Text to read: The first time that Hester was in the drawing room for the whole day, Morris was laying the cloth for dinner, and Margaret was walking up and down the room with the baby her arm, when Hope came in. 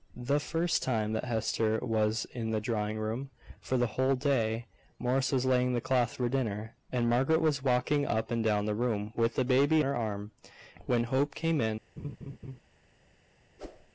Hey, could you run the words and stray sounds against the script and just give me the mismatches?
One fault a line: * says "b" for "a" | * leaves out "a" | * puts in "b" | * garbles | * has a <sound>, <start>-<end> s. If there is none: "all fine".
* has a laugh, 12.0-12.6 s
* has a whoosh, 13.6-13.9 s